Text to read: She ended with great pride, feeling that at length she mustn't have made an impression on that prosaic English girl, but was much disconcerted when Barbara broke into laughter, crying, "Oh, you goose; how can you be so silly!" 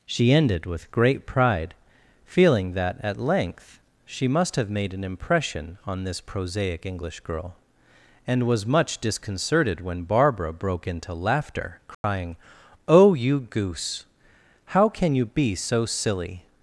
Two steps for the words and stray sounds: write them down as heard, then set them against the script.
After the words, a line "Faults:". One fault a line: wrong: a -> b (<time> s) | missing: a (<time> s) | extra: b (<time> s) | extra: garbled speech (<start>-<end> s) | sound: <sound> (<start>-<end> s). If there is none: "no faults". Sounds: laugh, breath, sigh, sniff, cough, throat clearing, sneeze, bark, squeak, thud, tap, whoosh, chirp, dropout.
She ended with great pride, feeling that at length she must have made an impression on this prosaic English girl, and was much disconcerted when Barbara broke into laughter, crying, "Oh, you goose; how can you be so silly!"
Faults:
wrong: mustn't -> must (4.3 s)
wrong: that -> this (6.0 s)
wrong: but -> and (8.2 s)
sound: dropout (11.9-12.0 s)